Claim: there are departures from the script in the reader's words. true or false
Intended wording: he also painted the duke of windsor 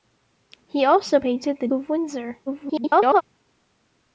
true